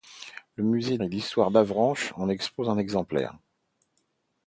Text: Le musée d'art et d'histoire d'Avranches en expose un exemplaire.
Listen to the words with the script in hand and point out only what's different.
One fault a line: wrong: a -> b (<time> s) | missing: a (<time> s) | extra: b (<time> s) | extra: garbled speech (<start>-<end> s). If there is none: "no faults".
missing: d'art (1.0 s)